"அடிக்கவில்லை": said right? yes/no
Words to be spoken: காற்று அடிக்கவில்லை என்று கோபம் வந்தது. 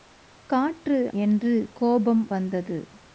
no